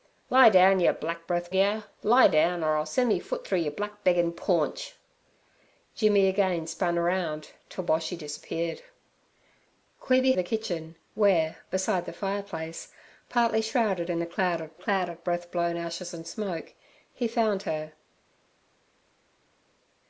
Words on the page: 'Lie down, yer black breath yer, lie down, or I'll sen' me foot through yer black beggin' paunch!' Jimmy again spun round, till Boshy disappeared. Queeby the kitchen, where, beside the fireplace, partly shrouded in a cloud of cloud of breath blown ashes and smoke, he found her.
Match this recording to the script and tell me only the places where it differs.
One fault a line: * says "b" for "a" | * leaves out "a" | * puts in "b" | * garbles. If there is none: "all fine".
all fine